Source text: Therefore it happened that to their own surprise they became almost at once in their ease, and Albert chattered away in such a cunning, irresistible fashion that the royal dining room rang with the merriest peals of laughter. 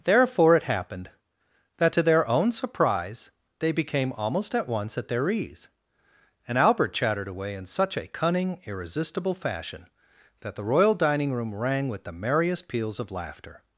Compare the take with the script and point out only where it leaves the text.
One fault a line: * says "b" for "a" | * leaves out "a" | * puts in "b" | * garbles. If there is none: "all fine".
* says "at" for "in"